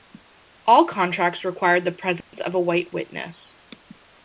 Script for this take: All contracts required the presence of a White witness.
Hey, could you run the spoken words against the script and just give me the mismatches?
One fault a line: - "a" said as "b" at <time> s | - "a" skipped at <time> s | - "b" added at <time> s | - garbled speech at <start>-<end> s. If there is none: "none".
none